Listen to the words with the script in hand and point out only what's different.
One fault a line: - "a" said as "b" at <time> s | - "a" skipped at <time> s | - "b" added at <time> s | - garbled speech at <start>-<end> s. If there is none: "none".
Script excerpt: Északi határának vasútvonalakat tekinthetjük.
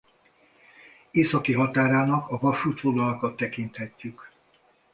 - "a" added at 2.3 s